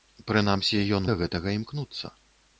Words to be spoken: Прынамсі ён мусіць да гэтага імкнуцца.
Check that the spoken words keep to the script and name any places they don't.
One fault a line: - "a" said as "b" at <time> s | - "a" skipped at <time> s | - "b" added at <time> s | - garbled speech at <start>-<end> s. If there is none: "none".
- "мусіць" skipped at 1.1 s